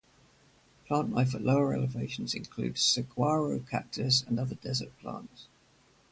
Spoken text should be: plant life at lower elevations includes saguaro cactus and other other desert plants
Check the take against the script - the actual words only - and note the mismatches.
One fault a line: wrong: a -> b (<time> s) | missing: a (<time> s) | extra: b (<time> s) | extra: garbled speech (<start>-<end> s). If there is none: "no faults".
missing: other (4.5 s)